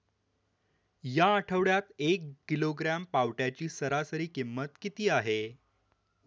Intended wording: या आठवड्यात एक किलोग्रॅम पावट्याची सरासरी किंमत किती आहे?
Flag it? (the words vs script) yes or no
no